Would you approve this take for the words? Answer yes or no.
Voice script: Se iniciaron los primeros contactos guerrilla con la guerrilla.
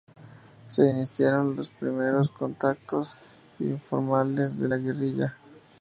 no